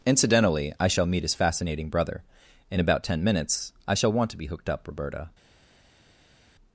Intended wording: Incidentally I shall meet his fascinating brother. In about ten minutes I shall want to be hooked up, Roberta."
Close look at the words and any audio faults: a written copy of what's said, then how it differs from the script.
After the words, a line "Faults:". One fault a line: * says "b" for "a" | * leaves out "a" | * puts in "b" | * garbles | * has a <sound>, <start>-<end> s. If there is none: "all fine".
Incidentally I shall meet his fascinating brother. In about ten minutes I shall want to be hooked up, Roberta."
Faults:
all fine